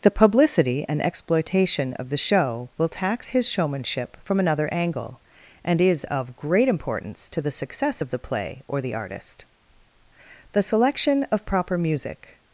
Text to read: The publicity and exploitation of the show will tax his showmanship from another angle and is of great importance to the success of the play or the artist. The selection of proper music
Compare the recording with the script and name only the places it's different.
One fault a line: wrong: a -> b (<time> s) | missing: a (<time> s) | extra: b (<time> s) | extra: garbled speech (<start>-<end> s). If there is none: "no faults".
no faults